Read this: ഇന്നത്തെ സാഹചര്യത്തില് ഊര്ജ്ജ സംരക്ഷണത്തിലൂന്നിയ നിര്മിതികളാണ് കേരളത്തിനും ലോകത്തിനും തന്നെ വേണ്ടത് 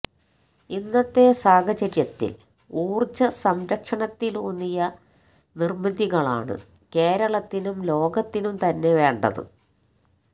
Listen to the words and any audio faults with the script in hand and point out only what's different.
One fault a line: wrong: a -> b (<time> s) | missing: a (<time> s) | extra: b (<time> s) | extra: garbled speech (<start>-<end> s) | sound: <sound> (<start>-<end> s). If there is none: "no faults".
no faults